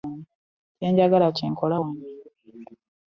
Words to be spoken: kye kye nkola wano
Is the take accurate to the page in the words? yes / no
no